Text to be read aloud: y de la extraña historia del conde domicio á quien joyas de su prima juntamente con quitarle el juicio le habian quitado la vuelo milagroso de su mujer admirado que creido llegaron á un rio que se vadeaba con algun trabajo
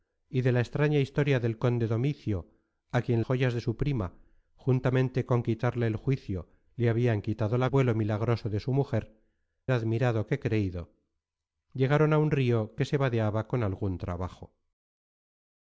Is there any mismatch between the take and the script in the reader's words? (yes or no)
no